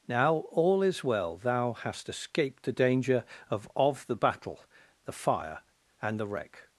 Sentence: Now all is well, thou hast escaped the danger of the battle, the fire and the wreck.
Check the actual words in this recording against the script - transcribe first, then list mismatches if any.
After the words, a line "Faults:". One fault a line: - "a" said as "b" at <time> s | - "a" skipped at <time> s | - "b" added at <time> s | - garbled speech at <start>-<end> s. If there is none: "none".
Now all is well, thou hast escaped the danger of of the battle, the fire and the wreck.
Faults:
- "of" added at 3.8 s